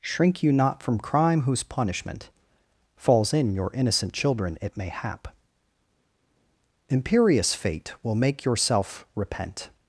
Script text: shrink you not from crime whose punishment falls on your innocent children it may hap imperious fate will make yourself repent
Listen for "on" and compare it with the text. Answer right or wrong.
wrong